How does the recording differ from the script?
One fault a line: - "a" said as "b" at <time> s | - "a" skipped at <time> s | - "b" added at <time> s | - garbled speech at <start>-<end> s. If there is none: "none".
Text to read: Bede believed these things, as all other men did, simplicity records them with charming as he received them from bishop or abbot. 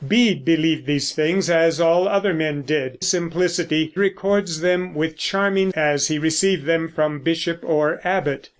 none